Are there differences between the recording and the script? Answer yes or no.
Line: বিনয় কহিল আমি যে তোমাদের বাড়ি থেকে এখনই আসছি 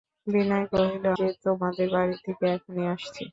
yes